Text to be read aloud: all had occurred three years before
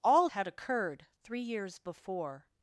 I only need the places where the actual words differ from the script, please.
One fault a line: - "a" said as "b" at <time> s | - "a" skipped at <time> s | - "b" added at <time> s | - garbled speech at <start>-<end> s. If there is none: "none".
none